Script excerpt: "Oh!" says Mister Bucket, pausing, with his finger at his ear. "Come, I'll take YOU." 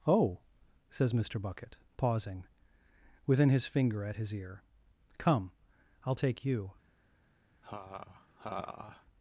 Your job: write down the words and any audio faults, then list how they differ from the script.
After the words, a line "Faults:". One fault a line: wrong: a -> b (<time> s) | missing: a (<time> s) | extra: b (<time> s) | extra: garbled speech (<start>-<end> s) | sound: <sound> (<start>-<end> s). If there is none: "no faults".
"Oh!" says Mister Bucket, pausing, within his finger at his ear. "Come, I'll take YOU."
Faults:
wrong: with -> within (3.3 s)
sound: laugh (7.6-9.1 s)